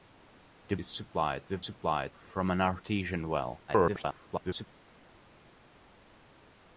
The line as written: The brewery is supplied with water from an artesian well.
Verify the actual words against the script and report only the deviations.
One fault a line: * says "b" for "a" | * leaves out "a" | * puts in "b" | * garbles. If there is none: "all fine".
* leaves out "brewery"
* says "supplied" for "water"
* garbles